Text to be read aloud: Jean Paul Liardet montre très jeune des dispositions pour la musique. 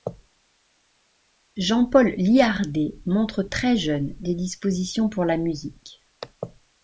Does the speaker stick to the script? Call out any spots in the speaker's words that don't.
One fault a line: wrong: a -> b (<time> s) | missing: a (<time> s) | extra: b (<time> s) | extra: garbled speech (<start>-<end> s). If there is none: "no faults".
no faults